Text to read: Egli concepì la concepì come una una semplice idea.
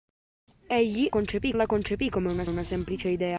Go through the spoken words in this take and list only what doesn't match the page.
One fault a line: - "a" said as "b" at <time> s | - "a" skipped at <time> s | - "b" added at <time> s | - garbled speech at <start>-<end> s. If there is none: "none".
none